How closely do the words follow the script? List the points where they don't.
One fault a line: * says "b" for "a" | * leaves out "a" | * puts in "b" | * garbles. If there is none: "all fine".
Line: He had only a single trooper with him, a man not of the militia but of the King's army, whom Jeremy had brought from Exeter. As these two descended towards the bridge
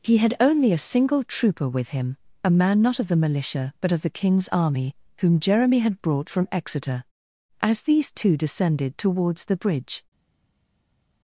all fine